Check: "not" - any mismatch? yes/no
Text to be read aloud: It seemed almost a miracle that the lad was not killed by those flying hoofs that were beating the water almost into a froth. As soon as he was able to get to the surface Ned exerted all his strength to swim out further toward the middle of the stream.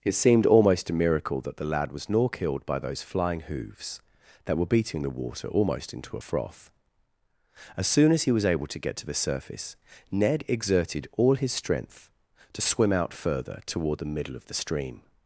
yes